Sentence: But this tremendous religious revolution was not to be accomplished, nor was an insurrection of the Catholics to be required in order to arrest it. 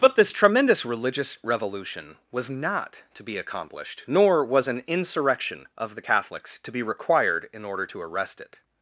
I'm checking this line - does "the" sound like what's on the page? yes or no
yes